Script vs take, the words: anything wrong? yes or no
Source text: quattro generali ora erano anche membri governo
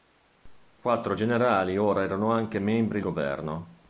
no